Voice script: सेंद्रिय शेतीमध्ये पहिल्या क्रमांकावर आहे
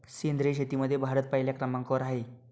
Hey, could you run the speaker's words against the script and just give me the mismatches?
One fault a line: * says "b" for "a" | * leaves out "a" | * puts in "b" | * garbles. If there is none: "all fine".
* puts in "भारत"